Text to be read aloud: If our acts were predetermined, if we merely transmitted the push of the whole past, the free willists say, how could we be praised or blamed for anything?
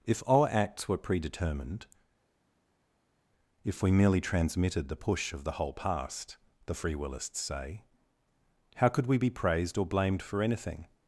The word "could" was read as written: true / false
true